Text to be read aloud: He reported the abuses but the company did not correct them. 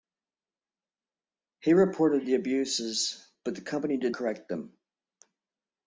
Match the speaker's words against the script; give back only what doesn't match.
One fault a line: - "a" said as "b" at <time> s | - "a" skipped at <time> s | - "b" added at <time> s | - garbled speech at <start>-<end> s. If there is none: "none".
- "not" skipped at 4.2 s